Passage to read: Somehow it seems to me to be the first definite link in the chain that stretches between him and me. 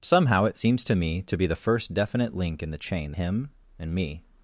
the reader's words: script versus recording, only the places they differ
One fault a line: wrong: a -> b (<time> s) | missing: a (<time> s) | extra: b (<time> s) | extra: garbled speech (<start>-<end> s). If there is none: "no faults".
missing: that stretches between (3.1 s)